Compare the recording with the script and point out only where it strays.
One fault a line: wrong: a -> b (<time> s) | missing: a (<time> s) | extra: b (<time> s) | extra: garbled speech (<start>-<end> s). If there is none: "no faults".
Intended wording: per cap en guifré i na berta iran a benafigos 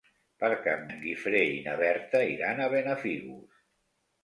no faults